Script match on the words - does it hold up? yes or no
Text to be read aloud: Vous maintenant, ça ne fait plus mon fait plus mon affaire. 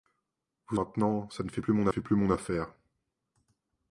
yes